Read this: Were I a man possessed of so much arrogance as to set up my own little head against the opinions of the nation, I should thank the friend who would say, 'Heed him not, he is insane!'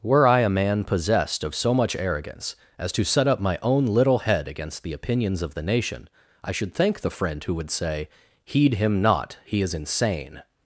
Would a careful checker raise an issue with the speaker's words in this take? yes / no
no